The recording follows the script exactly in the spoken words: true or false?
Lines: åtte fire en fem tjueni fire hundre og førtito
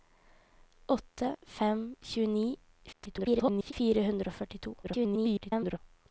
false